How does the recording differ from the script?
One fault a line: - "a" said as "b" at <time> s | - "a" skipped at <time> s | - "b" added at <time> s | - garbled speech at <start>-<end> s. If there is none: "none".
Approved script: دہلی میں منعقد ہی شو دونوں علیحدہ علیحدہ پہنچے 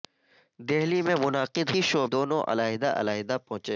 none